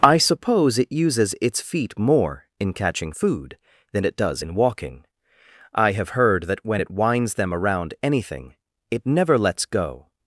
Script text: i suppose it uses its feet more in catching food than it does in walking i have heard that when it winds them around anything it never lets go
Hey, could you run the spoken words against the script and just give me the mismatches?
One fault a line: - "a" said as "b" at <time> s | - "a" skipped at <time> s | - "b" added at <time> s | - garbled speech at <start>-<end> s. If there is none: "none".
none